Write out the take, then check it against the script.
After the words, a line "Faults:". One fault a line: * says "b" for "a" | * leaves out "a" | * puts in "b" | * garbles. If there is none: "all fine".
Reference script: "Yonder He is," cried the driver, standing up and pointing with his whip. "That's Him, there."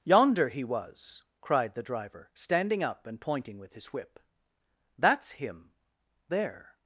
"Yonder He was," cried the driver, standing up and pointing with his whip. "That's Him, there."
Faults:
* says "was" for "is"